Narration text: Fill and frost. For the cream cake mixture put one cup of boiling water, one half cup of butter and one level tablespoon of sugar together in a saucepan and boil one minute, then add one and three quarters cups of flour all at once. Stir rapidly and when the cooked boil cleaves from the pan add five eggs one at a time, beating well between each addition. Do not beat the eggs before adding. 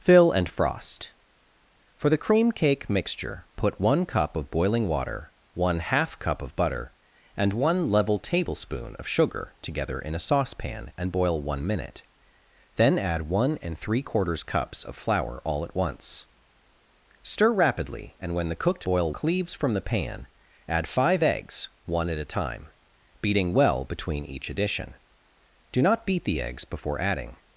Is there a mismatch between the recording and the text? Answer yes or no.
no